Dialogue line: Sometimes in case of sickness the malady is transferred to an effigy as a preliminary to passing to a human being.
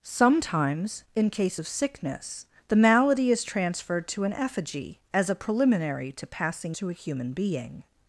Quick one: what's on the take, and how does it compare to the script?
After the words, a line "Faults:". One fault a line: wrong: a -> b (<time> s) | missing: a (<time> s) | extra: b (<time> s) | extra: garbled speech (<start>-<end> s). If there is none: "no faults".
Sometimes in case of sickness the malady is transferred to an effigy as a preliminary to passing to a human being.
Faults:
no faults